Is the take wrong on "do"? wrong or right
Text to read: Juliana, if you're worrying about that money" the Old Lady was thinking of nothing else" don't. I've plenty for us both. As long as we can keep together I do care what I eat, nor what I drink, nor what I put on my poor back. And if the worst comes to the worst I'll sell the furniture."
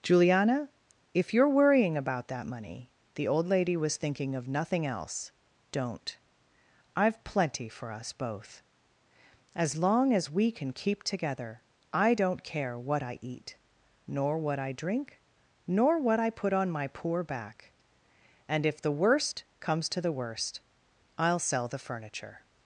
wrong